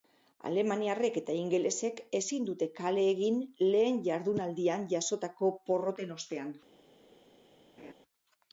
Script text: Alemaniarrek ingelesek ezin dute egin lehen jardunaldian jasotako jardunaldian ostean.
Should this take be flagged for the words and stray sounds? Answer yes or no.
yes